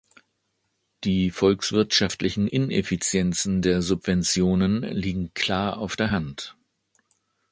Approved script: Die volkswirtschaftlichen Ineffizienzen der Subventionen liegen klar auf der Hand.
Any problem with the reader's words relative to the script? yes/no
no